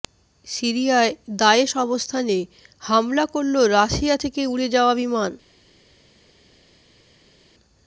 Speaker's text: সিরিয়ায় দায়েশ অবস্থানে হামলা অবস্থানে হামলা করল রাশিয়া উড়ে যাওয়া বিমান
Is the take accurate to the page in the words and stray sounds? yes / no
no